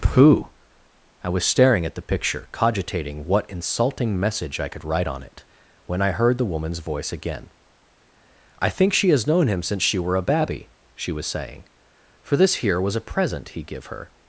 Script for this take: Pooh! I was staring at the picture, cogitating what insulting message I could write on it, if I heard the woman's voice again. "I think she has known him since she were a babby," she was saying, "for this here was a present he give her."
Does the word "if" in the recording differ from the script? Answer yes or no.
yes